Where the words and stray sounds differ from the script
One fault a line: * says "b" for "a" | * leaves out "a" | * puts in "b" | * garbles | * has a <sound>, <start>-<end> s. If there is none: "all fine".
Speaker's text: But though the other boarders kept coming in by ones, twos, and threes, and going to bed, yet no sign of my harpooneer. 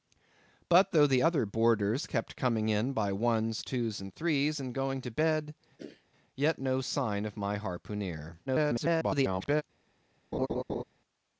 * has a throat clearing, 5.8-6.1 s
* garbles
* has a laugh, 10.3-10.8 s